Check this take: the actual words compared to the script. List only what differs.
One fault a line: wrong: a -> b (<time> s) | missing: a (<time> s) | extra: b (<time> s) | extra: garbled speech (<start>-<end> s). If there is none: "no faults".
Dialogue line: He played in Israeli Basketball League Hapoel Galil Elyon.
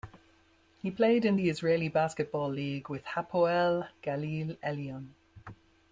extra: the (1.3 s)
extra: with (2.9 s)